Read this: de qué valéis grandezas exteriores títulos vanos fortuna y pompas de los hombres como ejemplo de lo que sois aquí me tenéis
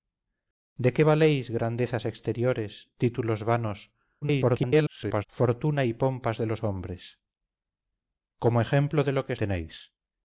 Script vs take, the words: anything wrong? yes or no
yes